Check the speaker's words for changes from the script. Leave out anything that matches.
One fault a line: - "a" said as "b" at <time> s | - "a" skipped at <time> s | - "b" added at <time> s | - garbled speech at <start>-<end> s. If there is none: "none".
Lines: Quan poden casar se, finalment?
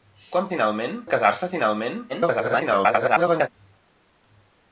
- "poden" said as "finalment" at 0.5 s
- garbled speech at 2.1-3.5 s